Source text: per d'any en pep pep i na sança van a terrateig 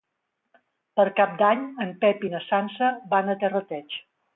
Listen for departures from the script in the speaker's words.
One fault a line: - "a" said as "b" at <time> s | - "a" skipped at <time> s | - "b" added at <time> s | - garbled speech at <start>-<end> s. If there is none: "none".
- "cap" added at 1.2 s
- "pep" skipped at 2.3 s